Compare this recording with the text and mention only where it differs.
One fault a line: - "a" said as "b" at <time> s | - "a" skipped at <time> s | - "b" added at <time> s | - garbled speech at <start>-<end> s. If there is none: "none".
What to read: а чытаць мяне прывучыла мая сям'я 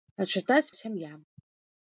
- "мяне прывучыла мая" skipped at 0.7 s